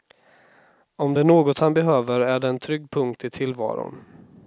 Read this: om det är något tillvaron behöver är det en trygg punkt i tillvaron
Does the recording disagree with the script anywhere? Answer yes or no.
yes